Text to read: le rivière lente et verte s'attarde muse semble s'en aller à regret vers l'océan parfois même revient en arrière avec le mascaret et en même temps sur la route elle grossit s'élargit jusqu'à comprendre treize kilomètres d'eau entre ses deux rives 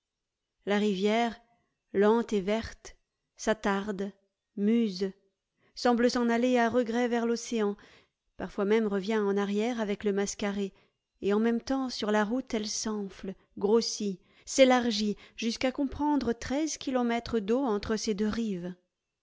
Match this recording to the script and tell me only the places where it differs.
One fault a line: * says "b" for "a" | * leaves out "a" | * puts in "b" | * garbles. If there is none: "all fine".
* says "la" for "le"
* puts in "s'enfle"